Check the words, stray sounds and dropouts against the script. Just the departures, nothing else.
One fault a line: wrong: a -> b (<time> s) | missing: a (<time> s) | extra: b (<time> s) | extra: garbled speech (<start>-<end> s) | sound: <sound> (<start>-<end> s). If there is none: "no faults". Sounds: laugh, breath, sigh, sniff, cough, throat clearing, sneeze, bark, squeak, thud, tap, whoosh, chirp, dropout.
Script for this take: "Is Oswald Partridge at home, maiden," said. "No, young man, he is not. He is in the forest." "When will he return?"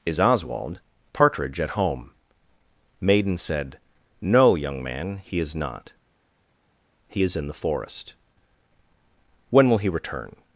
no faults